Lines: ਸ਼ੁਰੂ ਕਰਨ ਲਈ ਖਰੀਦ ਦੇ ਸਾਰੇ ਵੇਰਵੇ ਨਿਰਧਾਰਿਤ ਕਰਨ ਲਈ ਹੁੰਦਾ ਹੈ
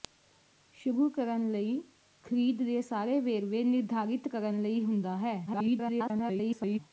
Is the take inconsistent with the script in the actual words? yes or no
yes